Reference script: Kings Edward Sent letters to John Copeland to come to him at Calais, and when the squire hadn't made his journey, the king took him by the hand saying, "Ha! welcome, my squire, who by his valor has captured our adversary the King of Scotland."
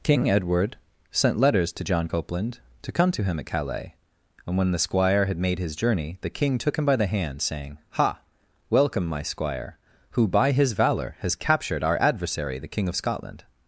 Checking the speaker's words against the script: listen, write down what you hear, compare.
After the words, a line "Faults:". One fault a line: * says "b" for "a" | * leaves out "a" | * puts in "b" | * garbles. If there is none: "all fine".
King Edward Sent letters to John Copeland to come to him at Calais, and when the squire had made his journey, the king took him by the hand saying, "Ha! welcome, my squire, who by his valor has captured our adversary the King of Scotland."
Faults:
* says "King" for "Kings"
* says "had" for "hadn't"